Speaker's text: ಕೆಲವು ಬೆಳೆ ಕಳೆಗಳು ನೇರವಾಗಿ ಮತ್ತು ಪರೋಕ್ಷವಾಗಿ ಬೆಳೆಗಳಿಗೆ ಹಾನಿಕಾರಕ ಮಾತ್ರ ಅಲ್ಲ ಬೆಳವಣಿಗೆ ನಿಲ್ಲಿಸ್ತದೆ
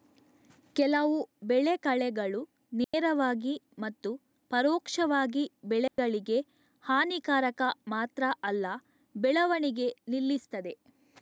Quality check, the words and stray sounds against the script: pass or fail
fail